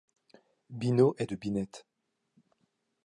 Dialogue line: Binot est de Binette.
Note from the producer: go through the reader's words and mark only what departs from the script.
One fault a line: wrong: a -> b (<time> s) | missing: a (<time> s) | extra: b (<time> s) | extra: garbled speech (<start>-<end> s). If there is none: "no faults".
no faults